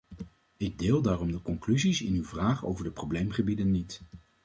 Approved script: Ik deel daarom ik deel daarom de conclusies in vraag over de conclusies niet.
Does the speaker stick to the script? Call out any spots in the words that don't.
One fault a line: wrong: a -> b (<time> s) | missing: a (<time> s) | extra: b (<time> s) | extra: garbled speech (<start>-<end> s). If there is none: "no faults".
missing: ik deel daarom (1.3 s)
extra: uw (2.1 s)
wrong: conclusies -> probleemgebieden (2.9 s)